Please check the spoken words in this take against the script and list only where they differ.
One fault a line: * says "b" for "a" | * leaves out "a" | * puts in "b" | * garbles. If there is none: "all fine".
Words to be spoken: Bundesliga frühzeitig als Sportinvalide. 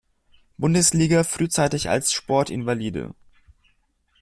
all fine